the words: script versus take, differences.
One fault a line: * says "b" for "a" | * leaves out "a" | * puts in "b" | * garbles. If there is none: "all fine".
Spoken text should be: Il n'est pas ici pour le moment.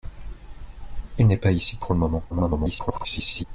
* garbles